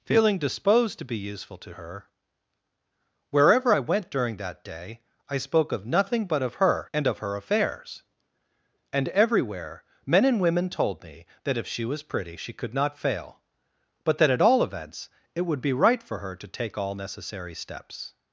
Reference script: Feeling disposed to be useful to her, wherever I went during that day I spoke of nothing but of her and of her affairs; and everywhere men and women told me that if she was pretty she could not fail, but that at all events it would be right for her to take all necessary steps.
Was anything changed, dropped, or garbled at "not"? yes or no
no